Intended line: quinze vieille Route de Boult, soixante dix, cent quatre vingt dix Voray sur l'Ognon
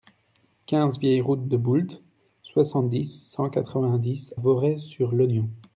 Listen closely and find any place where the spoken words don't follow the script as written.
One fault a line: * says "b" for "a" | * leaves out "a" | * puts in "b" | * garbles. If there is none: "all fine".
all fine